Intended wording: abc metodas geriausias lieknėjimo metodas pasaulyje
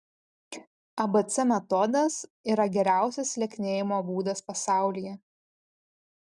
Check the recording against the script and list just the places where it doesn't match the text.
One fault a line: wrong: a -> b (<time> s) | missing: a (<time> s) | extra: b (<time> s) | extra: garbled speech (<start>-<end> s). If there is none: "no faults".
extra: yra (2.5 s)
wrong: metodas -> būdas (4.1 s)